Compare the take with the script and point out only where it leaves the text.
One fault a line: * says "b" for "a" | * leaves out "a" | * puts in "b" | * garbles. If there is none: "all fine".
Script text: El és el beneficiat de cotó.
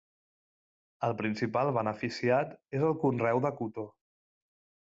* puts in "principal beneficiat"
* says "conreu" for "beneficiat"